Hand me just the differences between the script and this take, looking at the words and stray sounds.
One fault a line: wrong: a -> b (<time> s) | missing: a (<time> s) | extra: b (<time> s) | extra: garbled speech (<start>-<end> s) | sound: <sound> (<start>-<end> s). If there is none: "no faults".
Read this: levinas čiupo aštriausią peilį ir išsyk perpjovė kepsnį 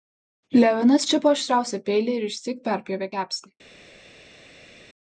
no faults